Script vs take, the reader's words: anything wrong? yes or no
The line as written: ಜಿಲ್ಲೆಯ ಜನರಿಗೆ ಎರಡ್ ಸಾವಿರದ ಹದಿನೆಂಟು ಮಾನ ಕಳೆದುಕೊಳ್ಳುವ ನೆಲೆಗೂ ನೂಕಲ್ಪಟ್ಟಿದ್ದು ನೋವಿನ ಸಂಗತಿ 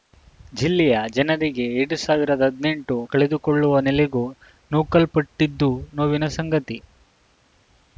yes